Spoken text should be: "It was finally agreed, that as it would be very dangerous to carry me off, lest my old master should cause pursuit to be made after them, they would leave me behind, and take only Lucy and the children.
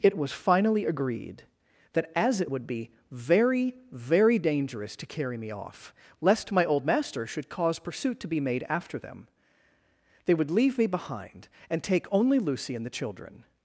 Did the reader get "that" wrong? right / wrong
right